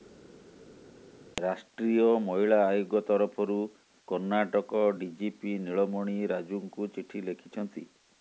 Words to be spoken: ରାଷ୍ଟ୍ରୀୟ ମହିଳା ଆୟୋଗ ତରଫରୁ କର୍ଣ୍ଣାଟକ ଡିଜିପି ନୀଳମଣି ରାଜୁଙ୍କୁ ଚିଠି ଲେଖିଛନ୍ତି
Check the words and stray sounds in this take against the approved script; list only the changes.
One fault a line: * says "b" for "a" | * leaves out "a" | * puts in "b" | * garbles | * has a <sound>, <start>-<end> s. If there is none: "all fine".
all fine